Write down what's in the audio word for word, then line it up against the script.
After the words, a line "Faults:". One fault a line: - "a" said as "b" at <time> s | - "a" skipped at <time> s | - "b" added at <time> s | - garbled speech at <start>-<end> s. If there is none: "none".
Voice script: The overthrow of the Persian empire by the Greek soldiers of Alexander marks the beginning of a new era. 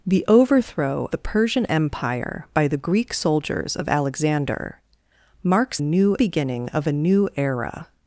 The overthrow the Persian empire by the Greek soldiers of Alexander marks new beginning of a new era.
Faults:
- "of" skipped at 1.1 s
- "the" said as "new" at 5.8 s